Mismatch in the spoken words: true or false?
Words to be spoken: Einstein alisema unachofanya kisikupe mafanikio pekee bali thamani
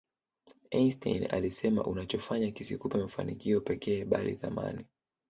false